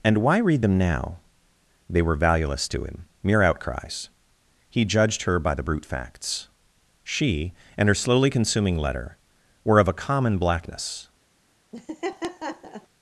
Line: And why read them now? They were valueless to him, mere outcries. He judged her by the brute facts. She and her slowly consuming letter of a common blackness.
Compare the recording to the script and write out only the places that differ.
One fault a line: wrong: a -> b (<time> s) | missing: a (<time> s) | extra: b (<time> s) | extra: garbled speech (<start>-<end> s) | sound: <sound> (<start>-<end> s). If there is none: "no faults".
extra: were (9.6 s)
sound: laugh (11.7-12.9 s)